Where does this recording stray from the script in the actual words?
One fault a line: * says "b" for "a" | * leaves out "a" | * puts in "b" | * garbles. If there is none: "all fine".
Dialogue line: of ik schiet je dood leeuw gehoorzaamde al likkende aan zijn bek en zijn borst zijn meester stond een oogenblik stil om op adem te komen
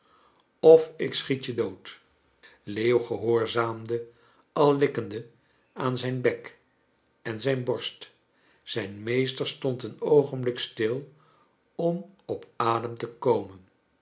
all fine